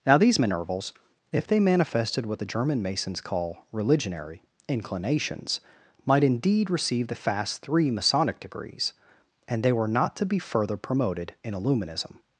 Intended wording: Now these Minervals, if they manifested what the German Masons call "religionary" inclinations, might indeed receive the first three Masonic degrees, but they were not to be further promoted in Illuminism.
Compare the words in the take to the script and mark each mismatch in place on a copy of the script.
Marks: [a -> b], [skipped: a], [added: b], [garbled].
Now these Minervals, if they manifested what the German Masons call "religionary" inclinations, might indeed receive the [first -> fast] three Masonic degrees, [but -> and] they were not to be further promoted in Illuminism.